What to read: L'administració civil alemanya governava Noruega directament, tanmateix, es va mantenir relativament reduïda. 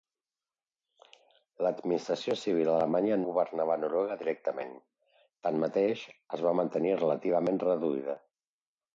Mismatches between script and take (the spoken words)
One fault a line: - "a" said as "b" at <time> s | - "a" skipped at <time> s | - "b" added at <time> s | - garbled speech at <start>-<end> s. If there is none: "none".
none